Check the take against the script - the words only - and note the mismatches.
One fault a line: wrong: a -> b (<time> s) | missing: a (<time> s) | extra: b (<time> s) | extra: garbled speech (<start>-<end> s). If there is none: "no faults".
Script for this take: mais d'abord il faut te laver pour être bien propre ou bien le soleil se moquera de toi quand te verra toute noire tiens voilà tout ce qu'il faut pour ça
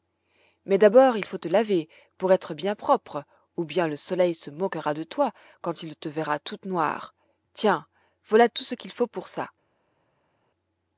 extra: il (5.8 s)